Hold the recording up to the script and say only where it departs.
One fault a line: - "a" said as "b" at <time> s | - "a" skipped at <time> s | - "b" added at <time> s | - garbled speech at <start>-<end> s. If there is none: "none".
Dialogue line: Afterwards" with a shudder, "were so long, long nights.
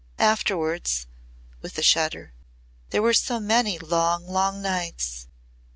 - "there" added at 2.9 s
- "many" added at 3.4 s